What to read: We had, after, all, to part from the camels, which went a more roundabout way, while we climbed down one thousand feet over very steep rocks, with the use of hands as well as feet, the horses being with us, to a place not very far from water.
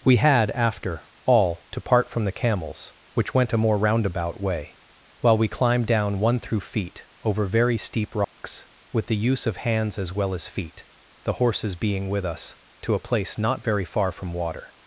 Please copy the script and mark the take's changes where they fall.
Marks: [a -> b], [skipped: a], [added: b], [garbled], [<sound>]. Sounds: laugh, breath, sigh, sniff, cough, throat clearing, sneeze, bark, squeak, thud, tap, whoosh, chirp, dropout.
We had, after, all, to part from the camels, which went a more roundabout way, while we climbed down one [thousand -> through] feet over very steep rocks, [dropout] with the use of hands as well as feet, the horses being with us, to a place not very far from water.